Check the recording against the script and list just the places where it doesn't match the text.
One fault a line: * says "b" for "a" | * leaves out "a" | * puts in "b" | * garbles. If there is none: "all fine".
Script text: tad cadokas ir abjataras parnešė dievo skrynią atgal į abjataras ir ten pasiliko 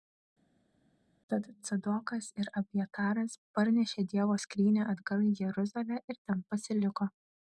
* says "jeruzalę" for "abjataras"